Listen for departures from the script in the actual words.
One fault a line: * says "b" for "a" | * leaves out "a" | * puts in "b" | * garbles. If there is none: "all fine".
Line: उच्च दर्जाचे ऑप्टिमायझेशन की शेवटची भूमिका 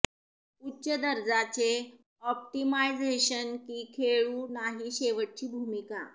* puts in "खेळू नाही"